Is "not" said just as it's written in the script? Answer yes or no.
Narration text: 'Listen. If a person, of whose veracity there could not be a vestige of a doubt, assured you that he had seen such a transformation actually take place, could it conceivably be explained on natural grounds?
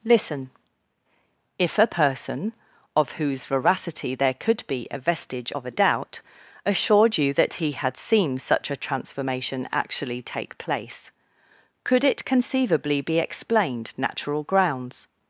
no